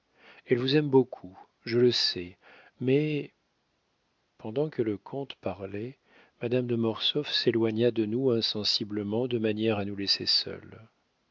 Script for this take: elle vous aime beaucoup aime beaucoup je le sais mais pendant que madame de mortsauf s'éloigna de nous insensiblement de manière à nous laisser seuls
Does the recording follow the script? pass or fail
fail